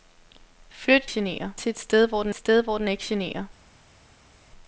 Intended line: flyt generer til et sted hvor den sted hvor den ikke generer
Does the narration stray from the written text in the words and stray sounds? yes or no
no